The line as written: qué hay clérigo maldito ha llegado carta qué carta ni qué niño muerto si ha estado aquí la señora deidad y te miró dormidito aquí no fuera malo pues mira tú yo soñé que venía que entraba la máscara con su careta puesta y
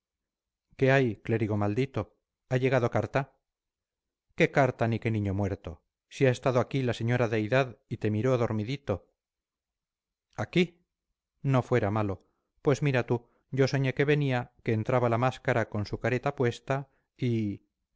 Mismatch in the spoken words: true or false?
false